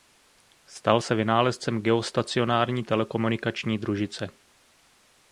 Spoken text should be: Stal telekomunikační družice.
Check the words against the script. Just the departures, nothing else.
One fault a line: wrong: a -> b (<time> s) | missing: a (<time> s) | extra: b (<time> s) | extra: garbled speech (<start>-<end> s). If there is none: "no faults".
extra: se vynálezcem geostacionární (1.0 s)